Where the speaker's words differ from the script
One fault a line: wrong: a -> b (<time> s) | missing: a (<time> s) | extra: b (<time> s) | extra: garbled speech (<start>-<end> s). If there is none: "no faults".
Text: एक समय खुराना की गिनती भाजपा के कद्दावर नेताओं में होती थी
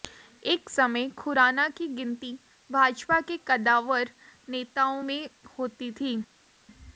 no faults